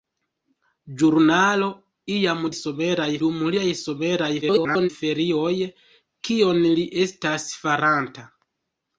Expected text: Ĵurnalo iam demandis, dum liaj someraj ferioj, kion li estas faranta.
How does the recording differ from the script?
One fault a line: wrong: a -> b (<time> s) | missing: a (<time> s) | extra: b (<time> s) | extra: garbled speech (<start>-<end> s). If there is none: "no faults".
wrong: demandis -> someraj (2.6 s)
extra: garbled speech (4.4-4.9 s)